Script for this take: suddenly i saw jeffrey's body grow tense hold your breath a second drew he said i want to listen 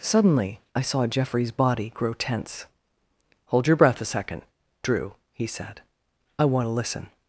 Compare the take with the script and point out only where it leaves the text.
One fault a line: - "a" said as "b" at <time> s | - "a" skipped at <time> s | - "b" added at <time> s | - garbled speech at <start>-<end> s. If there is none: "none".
none